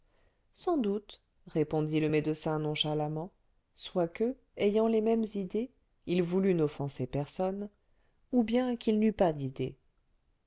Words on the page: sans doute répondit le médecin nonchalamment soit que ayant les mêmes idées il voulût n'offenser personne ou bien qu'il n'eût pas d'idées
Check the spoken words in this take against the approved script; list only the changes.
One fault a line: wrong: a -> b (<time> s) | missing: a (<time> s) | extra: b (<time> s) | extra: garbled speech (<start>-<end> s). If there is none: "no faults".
no faults